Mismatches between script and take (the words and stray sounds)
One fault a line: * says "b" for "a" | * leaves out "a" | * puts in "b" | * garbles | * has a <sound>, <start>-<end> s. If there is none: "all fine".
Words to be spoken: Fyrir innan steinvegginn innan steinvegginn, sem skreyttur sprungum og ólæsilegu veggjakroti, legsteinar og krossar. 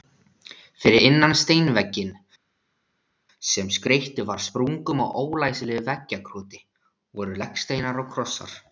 * leaves out "innan steinvegginn"
* puts in "var"
* puts in "voru"